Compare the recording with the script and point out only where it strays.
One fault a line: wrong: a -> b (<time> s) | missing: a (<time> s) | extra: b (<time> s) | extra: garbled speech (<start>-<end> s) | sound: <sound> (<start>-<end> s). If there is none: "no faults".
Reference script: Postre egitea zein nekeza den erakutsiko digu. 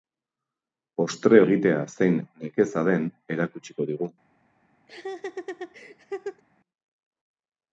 sound: laugh (4.9-6.4 s)